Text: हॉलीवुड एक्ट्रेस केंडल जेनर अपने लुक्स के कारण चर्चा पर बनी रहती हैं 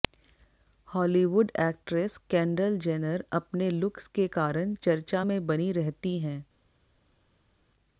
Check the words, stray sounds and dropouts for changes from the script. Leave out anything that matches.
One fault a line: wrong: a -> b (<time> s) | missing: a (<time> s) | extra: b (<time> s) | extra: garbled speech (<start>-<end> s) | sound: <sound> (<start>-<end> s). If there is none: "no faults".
wrong: पर -> में (5.2 s)